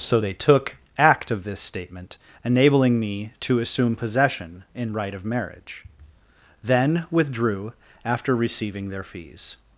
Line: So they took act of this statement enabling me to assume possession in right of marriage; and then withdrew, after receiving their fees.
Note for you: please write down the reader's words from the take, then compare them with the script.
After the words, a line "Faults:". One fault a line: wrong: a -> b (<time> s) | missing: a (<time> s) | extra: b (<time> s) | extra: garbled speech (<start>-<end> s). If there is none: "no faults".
So they took act of this statement enabling me to assume possession in right of marriage; then withdrew, after receiving their fees.
Faults:
missing: and (5.8 s)